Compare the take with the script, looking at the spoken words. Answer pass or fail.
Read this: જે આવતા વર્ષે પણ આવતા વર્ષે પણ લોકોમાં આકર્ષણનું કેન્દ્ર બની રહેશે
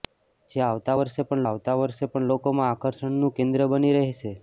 pass